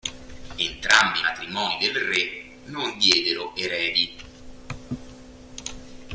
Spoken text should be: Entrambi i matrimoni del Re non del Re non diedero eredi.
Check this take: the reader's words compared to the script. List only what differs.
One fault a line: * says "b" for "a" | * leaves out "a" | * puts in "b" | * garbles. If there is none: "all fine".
* leaves out "del Re non"